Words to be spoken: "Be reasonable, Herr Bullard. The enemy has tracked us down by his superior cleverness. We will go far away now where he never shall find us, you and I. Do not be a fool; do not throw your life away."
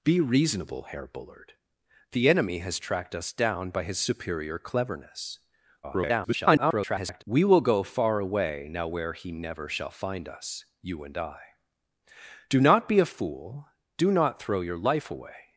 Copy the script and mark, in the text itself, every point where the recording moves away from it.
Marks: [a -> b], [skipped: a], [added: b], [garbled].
"Be reasonable, Herr Bullard. The enemy has tracked us down by his superior cleverness. [garbled] We will go far away now where he never shall find us, you and I. Do not be a fool; do not throw your life away."